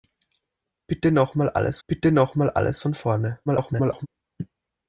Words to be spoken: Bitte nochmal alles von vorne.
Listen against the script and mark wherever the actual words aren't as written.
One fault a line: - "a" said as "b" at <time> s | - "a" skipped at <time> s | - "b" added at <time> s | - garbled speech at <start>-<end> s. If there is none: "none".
- "bitte nochmal alles" added at 1.9 s
- garbled speech at 3.5-4.1 s